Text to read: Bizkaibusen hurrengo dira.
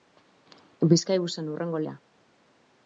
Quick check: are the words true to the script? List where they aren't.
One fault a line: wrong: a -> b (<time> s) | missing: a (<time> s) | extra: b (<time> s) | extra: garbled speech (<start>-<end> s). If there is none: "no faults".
no faults